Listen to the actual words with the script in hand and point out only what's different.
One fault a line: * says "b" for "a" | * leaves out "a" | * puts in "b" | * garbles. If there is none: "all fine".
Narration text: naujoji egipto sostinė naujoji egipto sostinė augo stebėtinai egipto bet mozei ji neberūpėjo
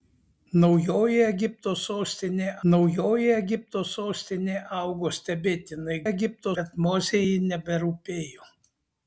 all fine